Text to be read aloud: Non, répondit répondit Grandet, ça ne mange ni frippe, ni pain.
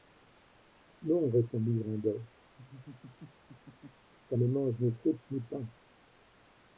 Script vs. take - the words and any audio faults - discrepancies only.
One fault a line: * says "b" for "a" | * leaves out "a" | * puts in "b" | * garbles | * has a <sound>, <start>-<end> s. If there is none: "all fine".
* leaves out "répondit"
* has a laugh, 2.5-4.0 s